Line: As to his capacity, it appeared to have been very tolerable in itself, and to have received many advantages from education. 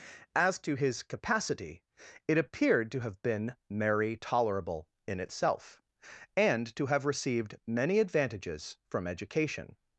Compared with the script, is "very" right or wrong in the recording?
wrong